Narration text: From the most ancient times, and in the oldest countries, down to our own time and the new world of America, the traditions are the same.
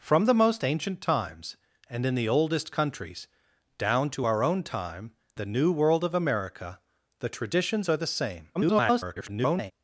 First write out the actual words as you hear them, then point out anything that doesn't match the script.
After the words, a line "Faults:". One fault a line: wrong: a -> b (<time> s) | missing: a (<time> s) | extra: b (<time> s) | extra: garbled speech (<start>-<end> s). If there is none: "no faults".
From the most ancient times, and in the oldest countries, down to our own time the new world of America, the traditions are the same. [garbled]
Faults:
missing: and (5.1 s)
extra: garbled speech (8.5-9.7 s)